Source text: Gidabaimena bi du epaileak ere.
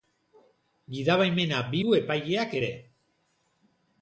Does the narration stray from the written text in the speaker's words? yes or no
no